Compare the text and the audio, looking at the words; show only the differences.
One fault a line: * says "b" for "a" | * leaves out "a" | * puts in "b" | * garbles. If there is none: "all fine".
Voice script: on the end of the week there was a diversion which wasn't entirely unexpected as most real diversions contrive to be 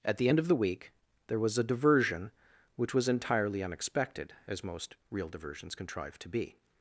* says "at" for "on"
* says "was" for "wasn't"